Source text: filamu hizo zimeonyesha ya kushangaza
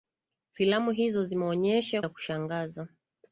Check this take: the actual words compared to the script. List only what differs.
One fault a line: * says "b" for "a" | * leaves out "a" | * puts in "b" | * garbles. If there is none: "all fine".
all fine